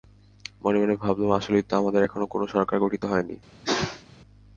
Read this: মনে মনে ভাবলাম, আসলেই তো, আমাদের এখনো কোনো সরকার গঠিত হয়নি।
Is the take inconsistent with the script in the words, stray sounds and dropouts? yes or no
yes